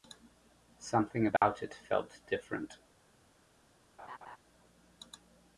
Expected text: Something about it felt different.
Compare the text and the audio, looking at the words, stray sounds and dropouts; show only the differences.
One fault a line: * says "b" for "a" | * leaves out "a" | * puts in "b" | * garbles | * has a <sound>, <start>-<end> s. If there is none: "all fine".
* has a dropout, 1.4-1.4 s
* has a laugh, 4.0-4.4 s